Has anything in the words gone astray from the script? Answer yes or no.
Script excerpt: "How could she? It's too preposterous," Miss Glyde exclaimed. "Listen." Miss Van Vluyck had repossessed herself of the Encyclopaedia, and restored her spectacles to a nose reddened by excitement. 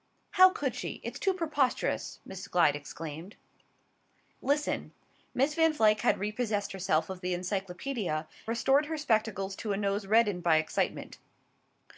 yes